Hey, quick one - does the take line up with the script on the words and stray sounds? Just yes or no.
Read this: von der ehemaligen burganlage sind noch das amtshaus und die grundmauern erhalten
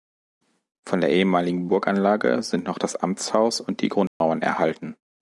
no